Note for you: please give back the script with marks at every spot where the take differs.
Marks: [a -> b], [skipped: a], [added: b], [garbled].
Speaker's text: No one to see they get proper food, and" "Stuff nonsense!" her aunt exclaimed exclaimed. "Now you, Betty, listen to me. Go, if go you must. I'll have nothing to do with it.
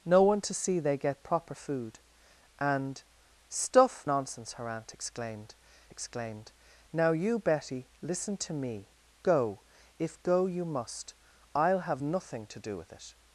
No one to see they get proper food, and" "Stuff nonsense!" her aunt exclaimed exclaimed. "Now you, Betty, listen to me. Go, if go you must. I'll have nothing to do with it.